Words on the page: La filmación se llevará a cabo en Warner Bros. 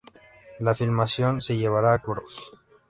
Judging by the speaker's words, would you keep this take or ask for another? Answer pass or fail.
fail